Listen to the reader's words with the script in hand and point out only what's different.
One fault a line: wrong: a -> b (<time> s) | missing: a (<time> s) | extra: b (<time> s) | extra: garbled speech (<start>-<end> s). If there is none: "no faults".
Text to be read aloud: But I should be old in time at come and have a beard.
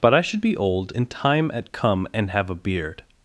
no faults